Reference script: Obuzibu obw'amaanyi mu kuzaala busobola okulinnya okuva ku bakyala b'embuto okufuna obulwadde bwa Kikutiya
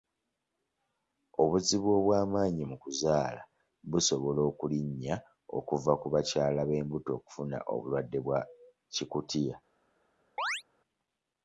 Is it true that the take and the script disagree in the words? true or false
false